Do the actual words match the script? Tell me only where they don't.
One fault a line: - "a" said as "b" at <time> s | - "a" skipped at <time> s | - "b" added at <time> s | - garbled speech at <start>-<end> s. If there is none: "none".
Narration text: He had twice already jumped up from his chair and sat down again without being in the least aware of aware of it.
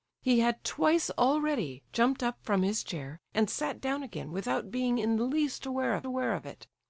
none